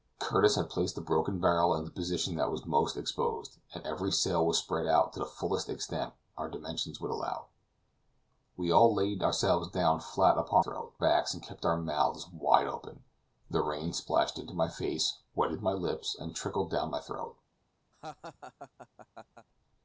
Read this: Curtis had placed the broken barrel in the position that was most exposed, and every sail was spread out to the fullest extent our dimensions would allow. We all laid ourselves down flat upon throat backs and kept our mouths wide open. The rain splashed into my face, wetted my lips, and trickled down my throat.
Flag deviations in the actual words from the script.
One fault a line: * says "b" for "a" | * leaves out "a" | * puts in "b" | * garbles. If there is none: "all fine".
all fine